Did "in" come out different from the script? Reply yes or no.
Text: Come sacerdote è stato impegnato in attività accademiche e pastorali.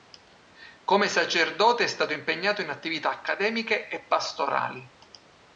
no